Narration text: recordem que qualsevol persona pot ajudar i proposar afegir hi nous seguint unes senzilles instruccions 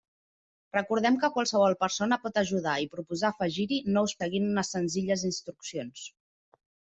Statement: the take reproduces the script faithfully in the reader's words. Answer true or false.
true